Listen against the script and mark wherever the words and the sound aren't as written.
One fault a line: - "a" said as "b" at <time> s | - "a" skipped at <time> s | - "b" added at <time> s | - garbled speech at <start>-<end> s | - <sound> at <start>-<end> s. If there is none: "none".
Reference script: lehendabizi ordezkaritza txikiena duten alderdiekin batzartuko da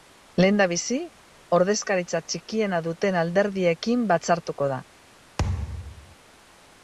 - thud at 5.4-6.2 s